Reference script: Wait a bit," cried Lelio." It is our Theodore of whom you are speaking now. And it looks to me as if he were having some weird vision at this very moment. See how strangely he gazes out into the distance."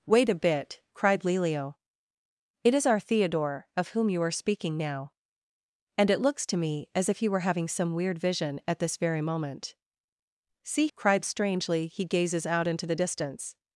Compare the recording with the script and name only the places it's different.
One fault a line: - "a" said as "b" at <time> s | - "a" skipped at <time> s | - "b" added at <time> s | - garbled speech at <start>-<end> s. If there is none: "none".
- "how" said as "cried" at 10.9 s